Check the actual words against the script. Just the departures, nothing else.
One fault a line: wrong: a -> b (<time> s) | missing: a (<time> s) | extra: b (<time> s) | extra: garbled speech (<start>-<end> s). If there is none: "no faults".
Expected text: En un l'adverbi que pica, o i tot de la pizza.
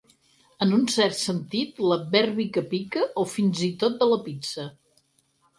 extra: cert sentit (0.9 s)
extra: fins (3.4 s)